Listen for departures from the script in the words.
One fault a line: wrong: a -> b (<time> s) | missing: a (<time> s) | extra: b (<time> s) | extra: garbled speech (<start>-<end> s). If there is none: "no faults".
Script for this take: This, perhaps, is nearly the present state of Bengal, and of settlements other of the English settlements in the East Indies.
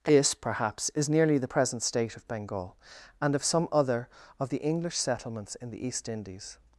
wrong: settlements -> some (3.4 s)